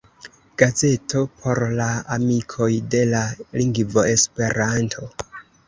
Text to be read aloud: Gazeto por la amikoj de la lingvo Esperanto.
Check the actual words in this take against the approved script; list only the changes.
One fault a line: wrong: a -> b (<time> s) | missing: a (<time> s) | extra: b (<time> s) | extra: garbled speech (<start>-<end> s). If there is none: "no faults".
no faults